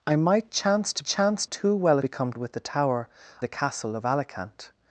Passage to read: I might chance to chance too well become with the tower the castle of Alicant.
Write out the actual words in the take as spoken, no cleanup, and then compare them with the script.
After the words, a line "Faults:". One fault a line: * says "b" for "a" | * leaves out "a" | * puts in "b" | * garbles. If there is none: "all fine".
I might chance to chance too well become with the tower the castle of Alicant.
Faults:
all fine